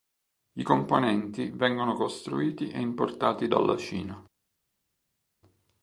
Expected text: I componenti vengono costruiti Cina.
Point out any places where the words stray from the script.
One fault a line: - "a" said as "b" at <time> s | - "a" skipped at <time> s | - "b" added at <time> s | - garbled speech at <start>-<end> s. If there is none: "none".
- "e importati dalla" added at 2.7 s